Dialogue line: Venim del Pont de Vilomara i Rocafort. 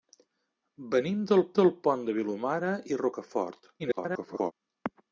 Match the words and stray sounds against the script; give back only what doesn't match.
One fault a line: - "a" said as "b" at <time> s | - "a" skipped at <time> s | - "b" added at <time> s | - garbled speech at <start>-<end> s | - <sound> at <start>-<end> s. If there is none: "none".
- "del" added at 1.6 s
- garbled speech at 3.8-4.5 s